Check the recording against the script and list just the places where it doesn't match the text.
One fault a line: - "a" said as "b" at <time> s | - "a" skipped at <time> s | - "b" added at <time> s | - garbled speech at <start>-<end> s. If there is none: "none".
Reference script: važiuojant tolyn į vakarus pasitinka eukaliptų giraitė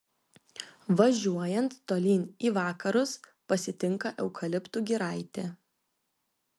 none